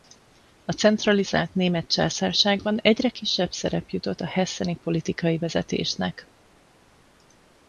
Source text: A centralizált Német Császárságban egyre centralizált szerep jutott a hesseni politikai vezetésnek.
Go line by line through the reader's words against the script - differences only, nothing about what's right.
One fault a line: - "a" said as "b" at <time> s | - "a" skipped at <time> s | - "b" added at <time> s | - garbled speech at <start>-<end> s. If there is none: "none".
- "centralizált" said as "kisebb" at 3.1 s